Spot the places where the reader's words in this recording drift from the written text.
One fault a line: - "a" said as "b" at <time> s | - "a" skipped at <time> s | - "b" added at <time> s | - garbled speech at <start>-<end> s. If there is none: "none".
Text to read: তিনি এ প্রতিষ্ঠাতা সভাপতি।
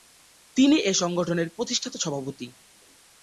- "সংগঠনের" added at 0.9 s